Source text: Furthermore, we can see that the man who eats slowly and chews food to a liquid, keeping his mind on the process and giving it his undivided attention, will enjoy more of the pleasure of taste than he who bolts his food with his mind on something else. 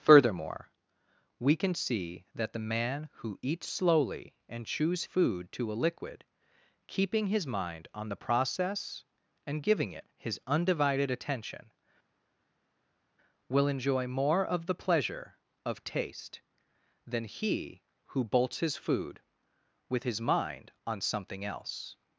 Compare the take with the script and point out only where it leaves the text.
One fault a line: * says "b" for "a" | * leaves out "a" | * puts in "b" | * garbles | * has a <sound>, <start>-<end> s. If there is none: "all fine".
all fine